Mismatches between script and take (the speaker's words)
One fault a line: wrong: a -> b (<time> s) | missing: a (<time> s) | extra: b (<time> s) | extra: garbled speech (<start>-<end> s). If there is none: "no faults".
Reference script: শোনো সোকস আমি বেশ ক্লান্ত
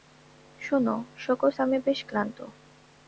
no faults